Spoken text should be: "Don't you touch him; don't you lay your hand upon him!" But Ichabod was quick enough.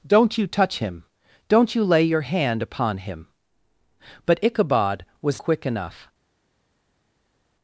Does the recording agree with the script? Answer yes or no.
yes